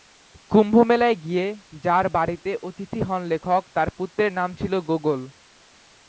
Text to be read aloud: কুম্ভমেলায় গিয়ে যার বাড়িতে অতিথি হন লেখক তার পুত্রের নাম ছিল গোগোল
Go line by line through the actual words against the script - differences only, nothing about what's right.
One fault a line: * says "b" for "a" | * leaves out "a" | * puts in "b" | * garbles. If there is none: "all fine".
all fine